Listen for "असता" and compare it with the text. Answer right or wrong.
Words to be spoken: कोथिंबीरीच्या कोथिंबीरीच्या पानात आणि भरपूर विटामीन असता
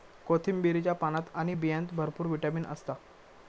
right